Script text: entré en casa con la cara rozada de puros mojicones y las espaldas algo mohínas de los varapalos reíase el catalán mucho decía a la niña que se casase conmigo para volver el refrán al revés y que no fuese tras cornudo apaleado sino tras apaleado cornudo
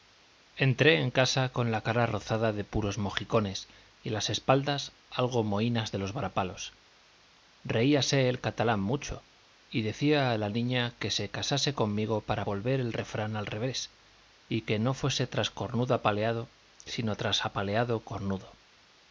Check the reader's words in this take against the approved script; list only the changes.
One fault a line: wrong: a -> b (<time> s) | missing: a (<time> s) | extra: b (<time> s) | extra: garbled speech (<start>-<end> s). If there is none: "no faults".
extra: y (9.7 s)